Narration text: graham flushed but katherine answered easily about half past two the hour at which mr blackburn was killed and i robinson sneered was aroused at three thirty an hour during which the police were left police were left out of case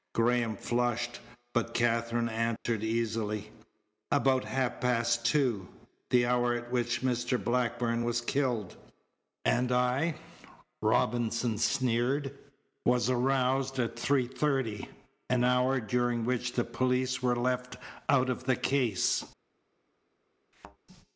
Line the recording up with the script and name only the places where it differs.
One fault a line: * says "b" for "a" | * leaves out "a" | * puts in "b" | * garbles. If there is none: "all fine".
* leaves out "police were left"
* puts in "the"